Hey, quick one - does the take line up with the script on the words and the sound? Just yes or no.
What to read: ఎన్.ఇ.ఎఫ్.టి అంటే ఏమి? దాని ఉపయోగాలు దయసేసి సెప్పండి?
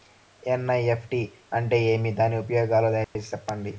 no